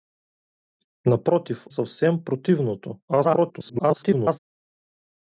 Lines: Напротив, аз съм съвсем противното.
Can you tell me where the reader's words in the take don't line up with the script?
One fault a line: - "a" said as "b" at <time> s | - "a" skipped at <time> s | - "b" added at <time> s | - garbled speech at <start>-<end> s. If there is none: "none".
- "аз съм" skipped at 1.7 s
- garbled speech at 3.1-4.4 s